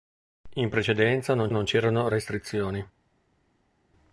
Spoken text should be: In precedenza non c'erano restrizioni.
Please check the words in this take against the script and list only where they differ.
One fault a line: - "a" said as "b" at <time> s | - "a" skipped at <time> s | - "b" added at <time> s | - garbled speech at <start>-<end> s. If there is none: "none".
- "non" added at 1.5 s